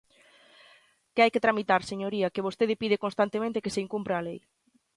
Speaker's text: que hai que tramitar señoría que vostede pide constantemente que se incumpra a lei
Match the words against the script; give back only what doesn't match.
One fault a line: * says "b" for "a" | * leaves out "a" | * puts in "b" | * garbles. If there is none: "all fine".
all fine